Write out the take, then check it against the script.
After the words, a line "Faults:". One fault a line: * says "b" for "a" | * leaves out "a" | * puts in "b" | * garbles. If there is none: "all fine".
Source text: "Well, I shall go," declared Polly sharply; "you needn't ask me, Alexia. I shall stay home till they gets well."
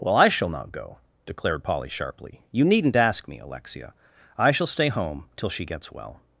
"Well, I shall not go," declared Polly sharply; "you needn't ask me, Alexia. I shall stay home till she gets well."
Faults:
* puts in "not"
* says "she" for "they"